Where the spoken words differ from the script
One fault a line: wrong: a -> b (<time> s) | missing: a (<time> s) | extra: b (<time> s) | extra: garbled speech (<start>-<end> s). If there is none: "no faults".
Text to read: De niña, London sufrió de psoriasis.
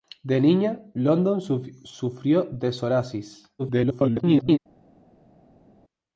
extra: garbled speech (3.6-4.6 s)